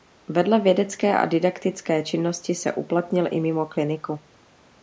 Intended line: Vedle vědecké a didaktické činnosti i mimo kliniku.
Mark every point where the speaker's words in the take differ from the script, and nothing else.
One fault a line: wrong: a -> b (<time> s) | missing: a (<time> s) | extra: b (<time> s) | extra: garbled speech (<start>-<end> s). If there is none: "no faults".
extra: se uplatnil (2.5 s)